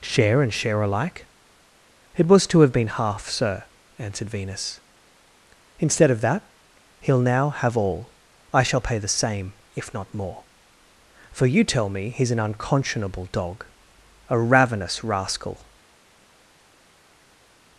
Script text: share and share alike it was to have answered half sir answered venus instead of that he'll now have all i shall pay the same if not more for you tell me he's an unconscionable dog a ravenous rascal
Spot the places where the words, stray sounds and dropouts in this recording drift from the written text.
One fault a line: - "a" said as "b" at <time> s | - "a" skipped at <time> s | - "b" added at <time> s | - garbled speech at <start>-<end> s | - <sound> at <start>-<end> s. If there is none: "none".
- "answered" said as "been" at 2.7 s